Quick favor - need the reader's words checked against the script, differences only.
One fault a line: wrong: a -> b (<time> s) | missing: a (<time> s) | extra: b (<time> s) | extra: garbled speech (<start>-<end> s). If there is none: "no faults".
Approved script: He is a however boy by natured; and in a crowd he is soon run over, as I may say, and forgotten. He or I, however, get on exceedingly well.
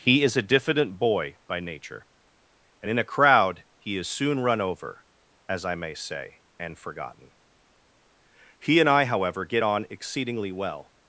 wrong: however -> diffident (0.4 s)
wrong: natured -> nature (1.6 s)
wrong: or -> and (8.8 s)